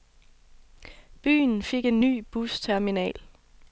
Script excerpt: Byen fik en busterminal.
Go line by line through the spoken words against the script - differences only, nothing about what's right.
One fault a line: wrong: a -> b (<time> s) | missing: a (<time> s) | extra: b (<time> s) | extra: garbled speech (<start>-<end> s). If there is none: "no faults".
extra: ny (2.0 s)